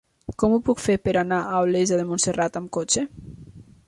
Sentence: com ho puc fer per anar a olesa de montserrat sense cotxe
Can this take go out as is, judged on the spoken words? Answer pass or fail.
fail